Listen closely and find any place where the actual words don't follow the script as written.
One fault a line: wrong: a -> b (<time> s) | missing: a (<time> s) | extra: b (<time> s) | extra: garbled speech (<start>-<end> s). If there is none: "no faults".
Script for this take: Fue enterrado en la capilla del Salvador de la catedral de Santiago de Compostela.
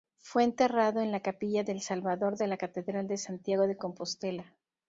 no faults